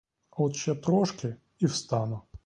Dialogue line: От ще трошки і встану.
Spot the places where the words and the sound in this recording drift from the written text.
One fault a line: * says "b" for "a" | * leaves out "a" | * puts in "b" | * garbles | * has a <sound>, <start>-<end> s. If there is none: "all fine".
all fine